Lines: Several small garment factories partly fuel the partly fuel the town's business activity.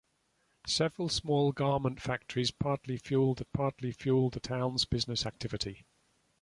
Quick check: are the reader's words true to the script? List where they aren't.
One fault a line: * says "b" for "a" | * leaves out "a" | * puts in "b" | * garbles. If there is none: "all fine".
all fine